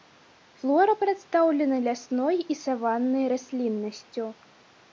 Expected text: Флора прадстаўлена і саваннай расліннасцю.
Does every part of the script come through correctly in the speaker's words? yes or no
no